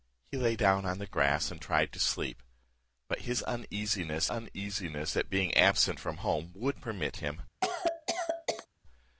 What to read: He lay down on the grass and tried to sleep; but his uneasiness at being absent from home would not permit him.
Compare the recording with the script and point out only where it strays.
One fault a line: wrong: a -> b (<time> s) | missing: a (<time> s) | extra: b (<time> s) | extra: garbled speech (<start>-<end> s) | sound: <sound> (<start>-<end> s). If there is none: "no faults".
extra: uneasiness (4.3 s)
missing: not (6.8 s)
sound: cough (7.6-8.7 s)